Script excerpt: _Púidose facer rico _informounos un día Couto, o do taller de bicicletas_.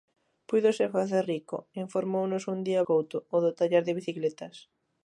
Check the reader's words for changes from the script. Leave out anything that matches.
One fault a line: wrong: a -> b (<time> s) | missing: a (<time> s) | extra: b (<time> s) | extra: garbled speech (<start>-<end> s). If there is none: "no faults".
no faults